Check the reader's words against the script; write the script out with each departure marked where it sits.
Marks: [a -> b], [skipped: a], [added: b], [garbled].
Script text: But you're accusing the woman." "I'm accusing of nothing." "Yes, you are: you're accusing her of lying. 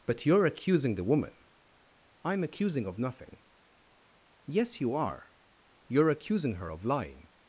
But you're accusing the woman." "I'm accusing of nothing." "Yes, you are: you're accusing her of lying.